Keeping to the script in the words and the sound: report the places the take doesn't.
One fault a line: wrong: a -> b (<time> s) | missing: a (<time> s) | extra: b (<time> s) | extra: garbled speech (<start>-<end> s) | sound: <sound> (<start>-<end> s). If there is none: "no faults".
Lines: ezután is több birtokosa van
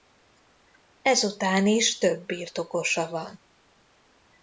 no faults